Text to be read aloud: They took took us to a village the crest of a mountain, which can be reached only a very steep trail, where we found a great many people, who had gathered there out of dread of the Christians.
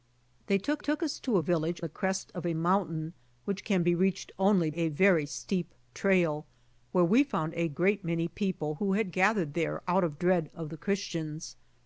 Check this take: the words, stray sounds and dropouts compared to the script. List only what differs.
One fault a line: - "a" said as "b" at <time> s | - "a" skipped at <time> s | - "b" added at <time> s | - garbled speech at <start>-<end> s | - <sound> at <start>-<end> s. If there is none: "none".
none